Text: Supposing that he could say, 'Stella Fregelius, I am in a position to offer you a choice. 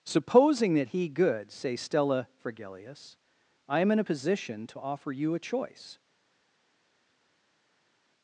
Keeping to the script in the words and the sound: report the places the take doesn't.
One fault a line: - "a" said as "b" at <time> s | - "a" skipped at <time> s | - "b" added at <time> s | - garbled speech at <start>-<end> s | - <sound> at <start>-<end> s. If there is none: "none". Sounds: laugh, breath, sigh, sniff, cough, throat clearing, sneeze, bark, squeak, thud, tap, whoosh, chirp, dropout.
- "could" said as "good" at 1.1 s